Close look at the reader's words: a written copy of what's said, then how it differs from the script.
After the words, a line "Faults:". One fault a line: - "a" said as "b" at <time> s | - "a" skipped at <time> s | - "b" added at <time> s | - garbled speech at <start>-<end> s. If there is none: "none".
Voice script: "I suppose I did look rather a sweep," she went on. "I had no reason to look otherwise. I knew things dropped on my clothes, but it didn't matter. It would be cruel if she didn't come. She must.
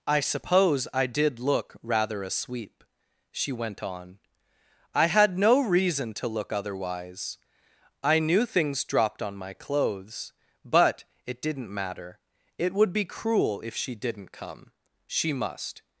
"I suppose I did look rather a sweep," she went on. "I had no reason to look otherwise. I knew things dropped on my clothes, but it didn't matter. It would be cruel if she didn't come. She must.
Faults:
none